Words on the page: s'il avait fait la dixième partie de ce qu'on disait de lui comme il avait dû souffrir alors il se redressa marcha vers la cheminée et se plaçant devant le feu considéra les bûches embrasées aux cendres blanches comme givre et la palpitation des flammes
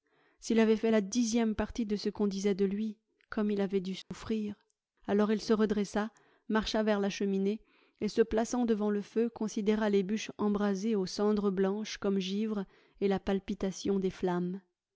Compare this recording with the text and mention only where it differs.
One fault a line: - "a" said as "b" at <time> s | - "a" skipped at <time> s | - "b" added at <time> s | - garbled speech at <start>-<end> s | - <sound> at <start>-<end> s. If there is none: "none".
- dropout at 4.0-4.1 s